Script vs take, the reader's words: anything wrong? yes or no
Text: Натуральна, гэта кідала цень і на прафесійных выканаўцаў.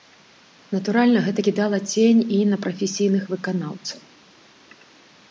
no